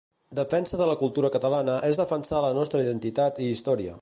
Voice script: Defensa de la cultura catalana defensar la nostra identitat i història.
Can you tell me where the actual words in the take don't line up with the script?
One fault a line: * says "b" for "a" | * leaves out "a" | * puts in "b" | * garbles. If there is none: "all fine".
* puts in "és"